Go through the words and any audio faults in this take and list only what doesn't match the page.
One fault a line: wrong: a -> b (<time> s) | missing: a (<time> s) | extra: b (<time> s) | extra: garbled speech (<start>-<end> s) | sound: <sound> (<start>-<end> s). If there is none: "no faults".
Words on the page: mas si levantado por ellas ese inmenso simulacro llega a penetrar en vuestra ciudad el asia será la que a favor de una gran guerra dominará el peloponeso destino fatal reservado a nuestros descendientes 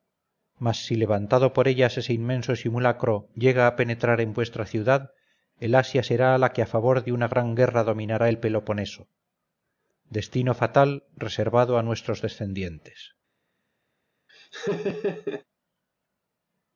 sound: laugh (14.3-15.4 s)